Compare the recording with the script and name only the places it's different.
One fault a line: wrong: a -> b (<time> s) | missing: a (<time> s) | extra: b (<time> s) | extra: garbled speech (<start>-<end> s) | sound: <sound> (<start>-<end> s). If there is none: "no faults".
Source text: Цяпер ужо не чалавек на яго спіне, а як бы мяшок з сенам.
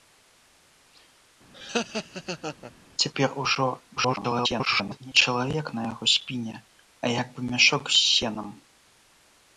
sound: laugh (1.5-2.7 s)
extra: garbled speech (4.0-5.0 s)